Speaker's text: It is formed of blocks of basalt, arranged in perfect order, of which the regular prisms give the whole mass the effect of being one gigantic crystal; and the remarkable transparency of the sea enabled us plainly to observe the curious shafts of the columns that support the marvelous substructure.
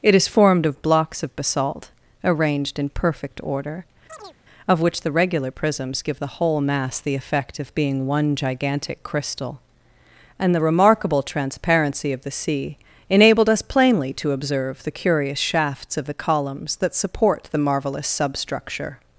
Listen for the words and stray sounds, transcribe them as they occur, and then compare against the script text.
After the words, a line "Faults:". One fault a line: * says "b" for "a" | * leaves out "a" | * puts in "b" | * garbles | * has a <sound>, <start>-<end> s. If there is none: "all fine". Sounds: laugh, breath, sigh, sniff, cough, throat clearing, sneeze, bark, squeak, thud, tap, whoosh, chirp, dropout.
It is formed of blocks of basalt, arranged in perfect order, of which the regular prisms give the whole mass the effect of being one gigantic crystal; and the remarkable transparency of the sea enabled us plainly to observe the curious shafts of the columns that support the marvelous substructure.
Faults:
* has a chirp, 4.1-4.4 s